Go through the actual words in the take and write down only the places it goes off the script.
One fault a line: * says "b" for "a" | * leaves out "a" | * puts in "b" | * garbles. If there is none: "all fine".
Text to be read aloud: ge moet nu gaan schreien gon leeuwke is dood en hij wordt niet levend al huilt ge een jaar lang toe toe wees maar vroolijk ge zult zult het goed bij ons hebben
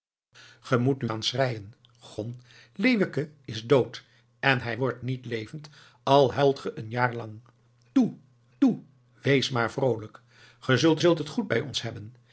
all fine